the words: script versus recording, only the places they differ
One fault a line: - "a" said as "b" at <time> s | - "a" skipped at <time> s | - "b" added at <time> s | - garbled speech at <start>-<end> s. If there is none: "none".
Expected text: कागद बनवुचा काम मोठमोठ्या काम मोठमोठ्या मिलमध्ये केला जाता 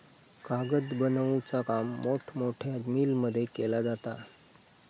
- "काम मोठमोठ्या" skipped at 2.8 s